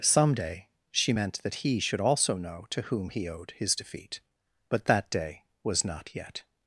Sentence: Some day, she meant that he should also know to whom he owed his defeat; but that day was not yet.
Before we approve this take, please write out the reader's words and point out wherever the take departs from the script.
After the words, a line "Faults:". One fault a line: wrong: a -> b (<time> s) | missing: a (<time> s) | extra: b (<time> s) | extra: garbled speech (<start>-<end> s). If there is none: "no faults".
Some day, she meant that he should also know to whom he owed his defeat; but that day was not yet.
Faults:
no faults